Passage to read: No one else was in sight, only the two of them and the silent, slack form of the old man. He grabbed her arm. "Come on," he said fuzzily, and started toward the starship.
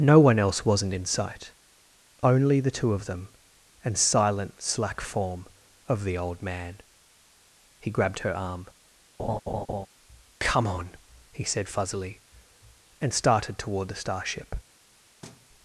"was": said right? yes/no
no